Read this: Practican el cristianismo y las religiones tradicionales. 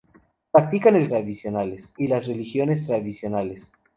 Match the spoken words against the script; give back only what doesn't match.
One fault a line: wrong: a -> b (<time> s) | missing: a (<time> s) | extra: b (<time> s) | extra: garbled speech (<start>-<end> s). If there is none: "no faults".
wrong: cristianismo -> tradicionales (1.1 s)